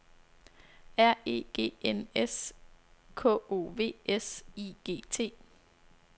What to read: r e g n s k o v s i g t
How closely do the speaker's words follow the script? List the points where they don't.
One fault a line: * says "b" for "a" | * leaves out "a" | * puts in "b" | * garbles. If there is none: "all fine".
all fine